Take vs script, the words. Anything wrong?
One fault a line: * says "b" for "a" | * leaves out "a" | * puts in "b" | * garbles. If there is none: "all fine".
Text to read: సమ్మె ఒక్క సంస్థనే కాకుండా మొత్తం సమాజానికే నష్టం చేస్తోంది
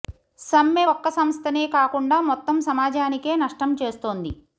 all fine